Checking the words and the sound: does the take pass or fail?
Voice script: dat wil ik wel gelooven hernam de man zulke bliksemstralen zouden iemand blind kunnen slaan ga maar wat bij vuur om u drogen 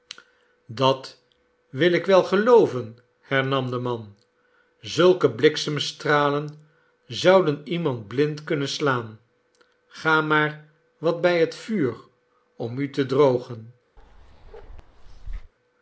fail